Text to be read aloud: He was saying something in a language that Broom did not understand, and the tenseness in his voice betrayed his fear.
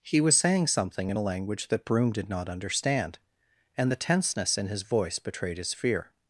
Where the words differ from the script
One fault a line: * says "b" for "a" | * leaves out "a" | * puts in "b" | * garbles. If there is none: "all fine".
all fine